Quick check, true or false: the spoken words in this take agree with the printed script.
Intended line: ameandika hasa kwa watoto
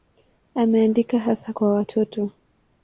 true